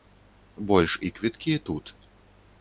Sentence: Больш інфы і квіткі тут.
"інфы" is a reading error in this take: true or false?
true